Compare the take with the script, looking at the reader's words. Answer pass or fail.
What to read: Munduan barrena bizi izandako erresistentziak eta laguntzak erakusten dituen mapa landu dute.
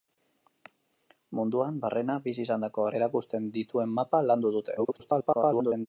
fail